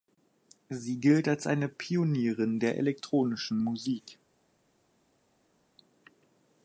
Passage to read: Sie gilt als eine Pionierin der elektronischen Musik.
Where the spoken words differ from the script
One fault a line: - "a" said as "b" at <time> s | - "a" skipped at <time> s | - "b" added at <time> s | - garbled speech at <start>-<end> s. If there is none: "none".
none